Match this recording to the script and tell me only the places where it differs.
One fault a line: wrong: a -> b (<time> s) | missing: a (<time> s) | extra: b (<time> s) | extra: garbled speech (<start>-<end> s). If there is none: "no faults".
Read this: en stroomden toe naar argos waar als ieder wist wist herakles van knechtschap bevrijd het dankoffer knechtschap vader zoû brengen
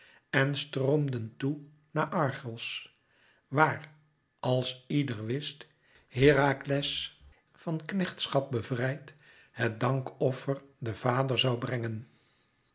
missing: wist (5.7 s)
wrong: knechtschap -> den (10.8 s)